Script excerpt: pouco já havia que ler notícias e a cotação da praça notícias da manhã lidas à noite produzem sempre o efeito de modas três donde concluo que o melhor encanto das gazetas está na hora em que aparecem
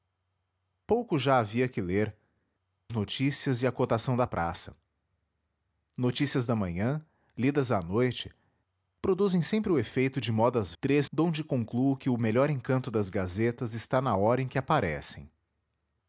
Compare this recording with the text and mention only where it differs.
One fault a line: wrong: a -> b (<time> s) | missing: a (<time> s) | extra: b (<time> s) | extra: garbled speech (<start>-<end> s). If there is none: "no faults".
no faults